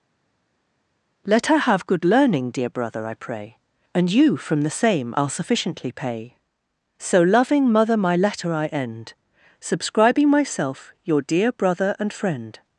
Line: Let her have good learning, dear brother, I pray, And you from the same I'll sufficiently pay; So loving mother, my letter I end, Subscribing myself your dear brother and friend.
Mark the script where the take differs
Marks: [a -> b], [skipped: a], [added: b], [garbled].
Let her have good learning, dear brother, I pray, And you from the same I'll sufficiently pay; So loving mother, my letter I end, Subscribing myself your dear brother and friend.